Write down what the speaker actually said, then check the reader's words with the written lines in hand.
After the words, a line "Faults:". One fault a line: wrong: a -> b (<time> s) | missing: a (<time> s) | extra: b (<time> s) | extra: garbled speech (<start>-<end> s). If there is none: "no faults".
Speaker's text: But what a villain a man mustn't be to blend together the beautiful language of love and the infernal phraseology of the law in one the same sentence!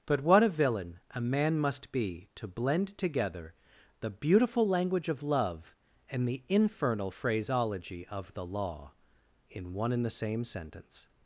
But what a villain a man must be to blend together the beautiful language of love and the infernal phraseology of the law in one and the same sentence!
Faults:
wrong: mustn't -> must (1.6 s)
extra: and (9.9 s)